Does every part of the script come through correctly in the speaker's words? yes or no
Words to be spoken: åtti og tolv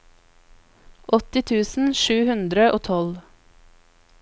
no